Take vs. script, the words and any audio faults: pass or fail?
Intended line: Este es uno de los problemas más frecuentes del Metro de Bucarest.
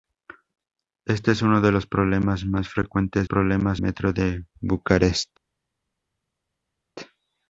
fail